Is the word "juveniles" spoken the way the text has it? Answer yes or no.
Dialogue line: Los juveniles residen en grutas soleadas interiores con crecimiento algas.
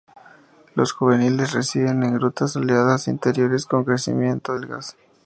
yes